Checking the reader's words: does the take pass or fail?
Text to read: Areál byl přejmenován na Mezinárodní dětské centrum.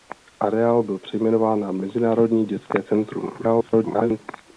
fail